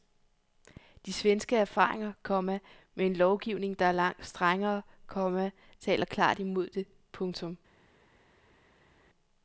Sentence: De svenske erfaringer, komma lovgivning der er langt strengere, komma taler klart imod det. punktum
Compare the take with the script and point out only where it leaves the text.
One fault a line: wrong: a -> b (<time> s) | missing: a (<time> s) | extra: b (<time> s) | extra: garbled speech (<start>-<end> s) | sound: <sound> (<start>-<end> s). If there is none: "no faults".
extra: med en (2.9 s)